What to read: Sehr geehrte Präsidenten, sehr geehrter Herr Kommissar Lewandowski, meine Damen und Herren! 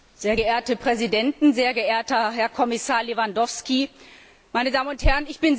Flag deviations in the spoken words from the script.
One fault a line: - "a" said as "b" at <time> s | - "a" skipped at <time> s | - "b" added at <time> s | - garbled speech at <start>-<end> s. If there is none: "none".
none